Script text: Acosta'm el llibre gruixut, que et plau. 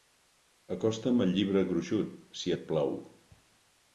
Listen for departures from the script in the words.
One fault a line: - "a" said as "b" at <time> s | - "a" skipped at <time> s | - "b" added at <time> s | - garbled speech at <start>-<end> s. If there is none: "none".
- "que" said as "si" at 2.4 s